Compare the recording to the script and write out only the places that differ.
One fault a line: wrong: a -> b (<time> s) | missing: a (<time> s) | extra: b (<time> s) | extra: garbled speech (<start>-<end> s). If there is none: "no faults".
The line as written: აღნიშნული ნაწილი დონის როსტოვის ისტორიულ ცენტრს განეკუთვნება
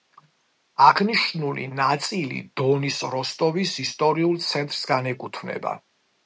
no faults